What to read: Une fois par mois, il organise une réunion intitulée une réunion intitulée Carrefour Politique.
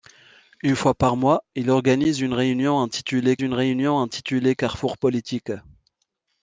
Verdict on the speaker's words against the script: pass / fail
pass